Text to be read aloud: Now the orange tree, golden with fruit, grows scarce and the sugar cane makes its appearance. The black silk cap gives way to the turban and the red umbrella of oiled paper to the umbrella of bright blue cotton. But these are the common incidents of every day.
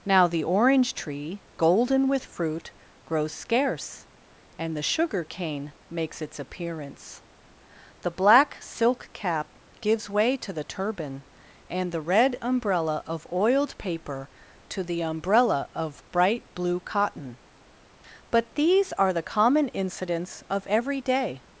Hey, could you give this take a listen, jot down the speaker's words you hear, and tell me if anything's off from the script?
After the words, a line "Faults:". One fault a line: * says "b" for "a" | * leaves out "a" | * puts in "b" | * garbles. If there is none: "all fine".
Now the orange tree, golden with fruit, grows scarce and the sugar cane makes its appearance. The black silk cap gives way to the turban and the red umbrella of oiled paper to the umbrella of bright blue cotton. But these are the common incidents of every day.
Faults:
all fine